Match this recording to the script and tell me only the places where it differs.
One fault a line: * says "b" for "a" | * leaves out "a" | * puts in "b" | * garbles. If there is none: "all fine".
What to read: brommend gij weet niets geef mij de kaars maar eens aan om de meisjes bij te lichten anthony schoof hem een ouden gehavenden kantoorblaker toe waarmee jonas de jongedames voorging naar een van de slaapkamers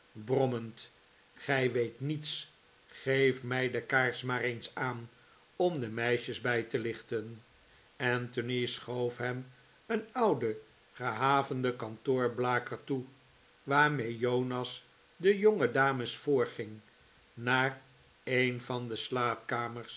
all fine